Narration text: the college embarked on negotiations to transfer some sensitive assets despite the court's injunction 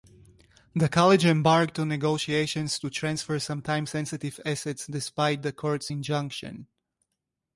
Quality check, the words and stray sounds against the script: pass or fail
fail